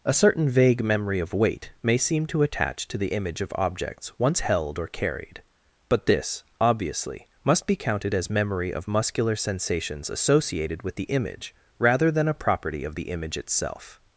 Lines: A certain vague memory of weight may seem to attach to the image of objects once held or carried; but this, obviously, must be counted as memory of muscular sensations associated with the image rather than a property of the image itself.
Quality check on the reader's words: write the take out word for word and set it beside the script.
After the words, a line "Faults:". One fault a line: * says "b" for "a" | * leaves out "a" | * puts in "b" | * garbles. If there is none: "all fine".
A certain vague memory of weight may seem to attach to the image of objects once held or carried; but this, obviously, must be counted as memory of muscular sensations associated with the image rather than a property of the image itself.
Faults:
all fine